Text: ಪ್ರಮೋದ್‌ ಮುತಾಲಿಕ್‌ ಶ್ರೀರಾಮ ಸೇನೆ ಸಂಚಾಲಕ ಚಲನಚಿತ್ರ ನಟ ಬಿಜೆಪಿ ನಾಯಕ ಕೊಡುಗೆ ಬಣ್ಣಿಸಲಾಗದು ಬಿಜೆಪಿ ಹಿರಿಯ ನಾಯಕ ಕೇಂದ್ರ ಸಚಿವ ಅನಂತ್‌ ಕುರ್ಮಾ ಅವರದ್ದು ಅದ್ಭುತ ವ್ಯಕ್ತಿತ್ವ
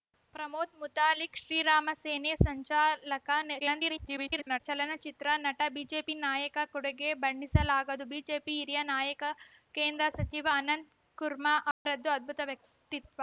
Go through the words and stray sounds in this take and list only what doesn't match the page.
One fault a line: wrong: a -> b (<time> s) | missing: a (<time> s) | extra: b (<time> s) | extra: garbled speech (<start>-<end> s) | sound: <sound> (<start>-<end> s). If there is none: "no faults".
extra: garbled speech (3.6-4.6 s)
sound: dropout (11.7-11.9 s)